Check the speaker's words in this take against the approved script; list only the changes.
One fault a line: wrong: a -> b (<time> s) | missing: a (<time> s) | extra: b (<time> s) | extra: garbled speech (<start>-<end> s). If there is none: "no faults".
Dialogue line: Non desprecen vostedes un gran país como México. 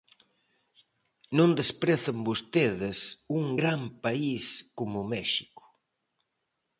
no faults